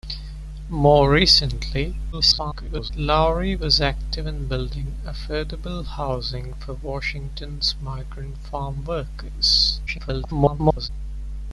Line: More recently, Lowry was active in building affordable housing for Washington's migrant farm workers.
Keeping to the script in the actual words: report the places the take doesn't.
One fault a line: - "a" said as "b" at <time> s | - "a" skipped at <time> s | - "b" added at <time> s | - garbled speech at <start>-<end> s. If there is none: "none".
- garbled speech at 2.1-2.9 s
- garbled speech at 9.9-10.9 s